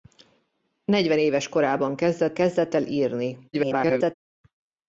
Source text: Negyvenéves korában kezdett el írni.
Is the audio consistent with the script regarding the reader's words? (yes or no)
no